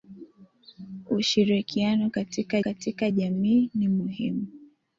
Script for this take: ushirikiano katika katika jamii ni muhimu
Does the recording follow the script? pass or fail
pass